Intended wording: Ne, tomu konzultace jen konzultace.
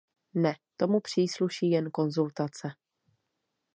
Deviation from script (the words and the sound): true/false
true